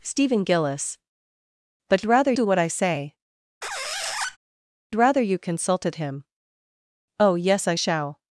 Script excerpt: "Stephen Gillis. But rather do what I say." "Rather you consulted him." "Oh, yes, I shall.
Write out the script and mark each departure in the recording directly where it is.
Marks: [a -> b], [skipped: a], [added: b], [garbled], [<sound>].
"Stephen Gillis. But rather do what I say." [squeak] "Rather you consulted him." "Oh, yes, I shall.